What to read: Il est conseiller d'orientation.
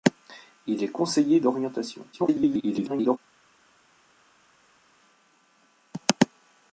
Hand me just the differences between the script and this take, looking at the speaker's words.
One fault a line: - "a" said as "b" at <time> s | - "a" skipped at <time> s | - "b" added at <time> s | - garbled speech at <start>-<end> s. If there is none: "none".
- garbled speech at 2.1-3.2 s